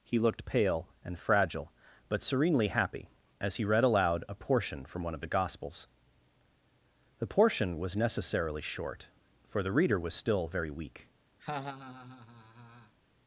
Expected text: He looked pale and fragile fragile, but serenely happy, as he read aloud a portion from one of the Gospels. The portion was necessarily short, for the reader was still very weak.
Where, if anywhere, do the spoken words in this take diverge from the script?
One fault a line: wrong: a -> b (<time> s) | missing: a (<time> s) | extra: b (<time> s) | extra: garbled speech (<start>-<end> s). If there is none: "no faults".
missing: fragile (1.7 s)